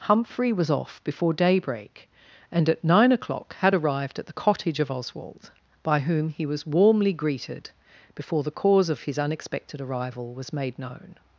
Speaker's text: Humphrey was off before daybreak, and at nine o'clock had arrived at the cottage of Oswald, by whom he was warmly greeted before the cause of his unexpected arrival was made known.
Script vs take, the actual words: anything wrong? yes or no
no